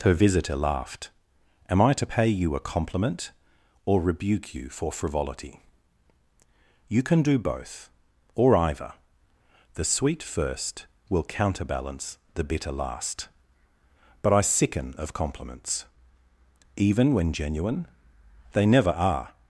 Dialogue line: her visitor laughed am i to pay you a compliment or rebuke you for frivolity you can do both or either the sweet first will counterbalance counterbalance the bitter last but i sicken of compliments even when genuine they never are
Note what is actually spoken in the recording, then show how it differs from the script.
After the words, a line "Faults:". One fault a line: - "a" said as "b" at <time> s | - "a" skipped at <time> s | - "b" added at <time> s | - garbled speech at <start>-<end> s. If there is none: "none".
her visitor laughed am i to pay you a compliment or rebuke you for frivolity you can do both or either the sweet first will counterbalance the bitter last but i sicken of compliments even when genuine they never are
Faults:
- "counterbalance" skipped at 12.2 s